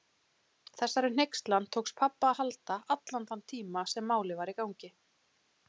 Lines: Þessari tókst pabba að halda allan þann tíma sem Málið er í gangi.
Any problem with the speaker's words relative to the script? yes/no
yes